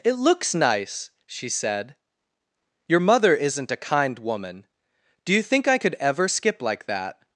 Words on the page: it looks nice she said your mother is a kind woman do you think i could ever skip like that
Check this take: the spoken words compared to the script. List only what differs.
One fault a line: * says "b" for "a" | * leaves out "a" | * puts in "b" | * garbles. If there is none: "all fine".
* says "isn't" for "is"